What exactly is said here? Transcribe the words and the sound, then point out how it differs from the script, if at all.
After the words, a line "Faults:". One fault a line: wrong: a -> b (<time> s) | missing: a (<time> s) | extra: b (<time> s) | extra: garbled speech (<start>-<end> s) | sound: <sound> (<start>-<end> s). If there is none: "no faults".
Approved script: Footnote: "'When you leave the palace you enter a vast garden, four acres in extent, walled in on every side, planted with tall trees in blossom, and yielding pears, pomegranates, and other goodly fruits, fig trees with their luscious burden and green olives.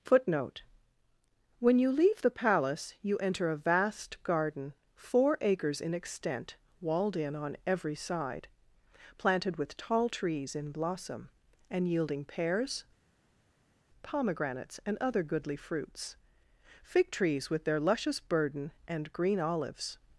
Footnote: "'When you leave the palace you enter a vast garden, four acres in extent, walled in on every side, planted with tall trees in blossom, and yielding pears, pomegranates, and other goodly fruits, fig trees with their luscious burden and green olives.
Faults:
no faults